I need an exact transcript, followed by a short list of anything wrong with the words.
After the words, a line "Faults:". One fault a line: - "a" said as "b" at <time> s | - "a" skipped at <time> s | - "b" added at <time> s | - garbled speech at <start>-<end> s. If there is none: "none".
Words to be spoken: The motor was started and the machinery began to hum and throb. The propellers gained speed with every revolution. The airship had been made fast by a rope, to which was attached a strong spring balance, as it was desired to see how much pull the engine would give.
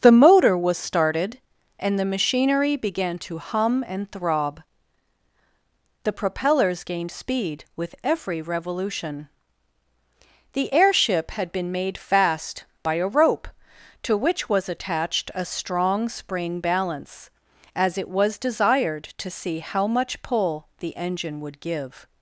The motor was started and the machinery began to hum and throb. The propellers gained speed with every revolution. The airship had been made fast by a rope, to which was attached a strong spring balance, as it was desired to see how much pull the engine would give.
Faults:
none